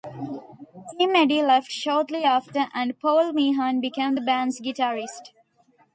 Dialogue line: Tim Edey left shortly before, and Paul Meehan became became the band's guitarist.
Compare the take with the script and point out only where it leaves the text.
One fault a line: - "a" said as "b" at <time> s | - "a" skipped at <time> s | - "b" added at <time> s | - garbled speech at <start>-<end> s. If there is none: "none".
- "before" said as "after" at 2.2 s
- "became" skipped at 4.1 s